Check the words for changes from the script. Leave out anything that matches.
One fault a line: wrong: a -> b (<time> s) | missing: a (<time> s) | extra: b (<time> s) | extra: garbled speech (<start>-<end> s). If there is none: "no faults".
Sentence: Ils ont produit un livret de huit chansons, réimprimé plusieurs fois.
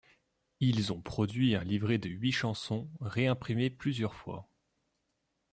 no faults